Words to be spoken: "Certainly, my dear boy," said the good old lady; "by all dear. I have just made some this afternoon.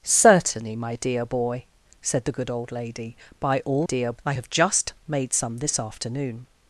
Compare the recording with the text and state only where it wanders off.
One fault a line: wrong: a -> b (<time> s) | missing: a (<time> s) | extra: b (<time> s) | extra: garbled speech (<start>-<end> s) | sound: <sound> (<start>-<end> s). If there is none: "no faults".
no faults